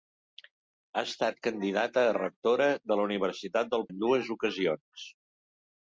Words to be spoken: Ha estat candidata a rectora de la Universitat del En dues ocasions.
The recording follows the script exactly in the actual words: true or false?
true